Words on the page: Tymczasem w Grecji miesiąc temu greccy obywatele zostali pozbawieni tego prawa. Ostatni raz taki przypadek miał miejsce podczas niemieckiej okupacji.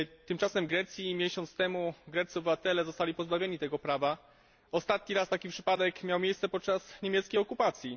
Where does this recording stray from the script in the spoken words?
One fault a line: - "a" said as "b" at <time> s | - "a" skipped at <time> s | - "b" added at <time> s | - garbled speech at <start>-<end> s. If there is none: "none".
none